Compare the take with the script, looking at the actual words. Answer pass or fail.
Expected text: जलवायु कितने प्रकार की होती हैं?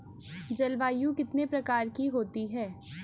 pass